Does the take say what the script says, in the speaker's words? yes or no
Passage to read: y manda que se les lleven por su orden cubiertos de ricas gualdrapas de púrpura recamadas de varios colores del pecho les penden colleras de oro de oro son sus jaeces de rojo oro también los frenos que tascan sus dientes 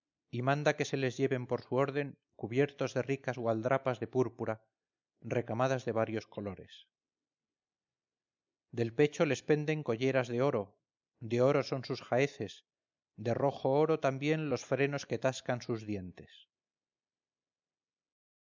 yes